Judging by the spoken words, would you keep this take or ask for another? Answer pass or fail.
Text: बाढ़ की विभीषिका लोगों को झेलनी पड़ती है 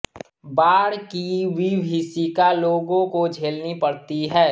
pass